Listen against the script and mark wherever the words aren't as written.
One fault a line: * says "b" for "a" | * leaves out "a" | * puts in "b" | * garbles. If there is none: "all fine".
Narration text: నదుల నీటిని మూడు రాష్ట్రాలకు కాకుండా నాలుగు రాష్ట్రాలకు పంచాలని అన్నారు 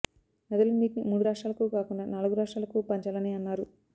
all fine